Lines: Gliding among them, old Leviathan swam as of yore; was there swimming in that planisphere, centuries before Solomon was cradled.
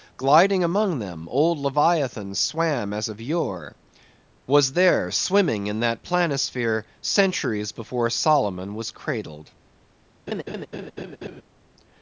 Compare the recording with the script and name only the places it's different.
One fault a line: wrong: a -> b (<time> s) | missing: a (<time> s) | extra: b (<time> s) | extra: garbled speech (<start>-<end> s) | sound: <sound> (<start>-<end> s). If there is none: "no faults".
sound: laugh (10.3-11.4 s)